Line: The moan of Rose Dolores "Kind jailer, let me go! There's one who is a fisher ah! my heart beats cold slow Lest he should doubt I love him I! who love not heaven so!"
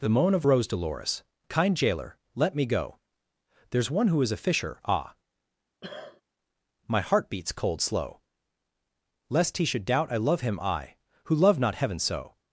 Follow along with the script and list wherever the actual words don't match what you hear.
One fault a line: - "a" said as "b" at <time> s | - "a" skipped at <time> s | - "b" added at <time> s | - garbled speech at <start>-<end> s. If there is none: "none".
none